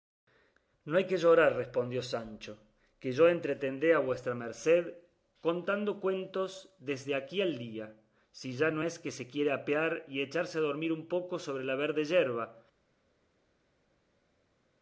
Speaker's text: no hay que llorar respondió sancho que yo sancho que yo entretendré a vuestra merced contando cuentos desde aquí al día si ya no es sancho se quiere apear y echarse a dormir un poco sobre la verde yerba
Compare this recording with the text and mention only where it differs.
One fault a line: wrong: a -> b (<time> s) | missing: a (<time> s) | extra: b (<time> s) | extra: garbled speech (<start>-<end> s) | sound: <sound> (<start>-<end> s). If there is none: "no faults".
missing: sancho que yo (3.3 s)
wrong: sancho -> que (9.0 s)